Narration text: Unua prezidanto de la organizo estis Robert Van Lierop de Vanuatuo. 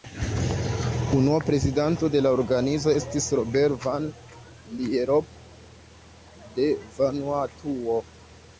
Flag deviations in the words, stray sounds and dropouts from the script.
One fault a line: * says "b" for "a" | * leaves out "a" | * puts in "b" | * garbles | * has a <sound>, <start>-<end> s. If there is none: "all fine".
all fine